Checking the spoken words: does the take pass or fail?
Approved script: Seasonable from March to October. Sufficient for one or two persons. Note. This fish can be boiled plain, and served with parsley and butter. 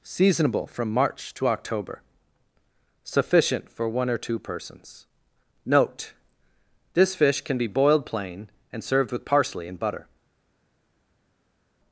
pass